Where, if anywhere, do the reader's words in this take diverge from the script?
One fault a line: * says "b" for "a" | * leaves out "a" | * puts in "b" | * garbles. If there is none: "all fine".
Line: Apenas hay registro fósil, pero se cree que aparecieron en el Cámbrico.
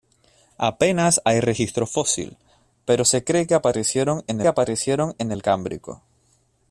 * puts in "aparecieron en"